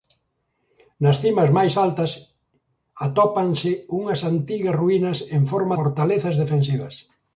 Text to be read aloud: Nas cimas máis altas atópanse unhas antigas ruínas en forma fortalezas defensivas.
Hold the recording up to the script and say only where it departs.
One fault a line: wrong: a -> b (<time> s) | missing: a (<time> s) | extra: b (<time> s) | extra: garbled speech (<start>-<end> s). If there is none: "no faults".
no faults